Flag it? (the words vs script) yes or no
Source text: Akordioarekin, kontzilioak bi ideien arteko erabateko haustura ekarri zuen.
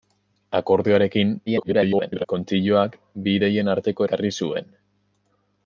yes